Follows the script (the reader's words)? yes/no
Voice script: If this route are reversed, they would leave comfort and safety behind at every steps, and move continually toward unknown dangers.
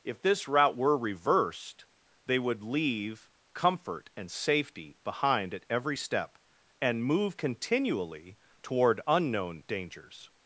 no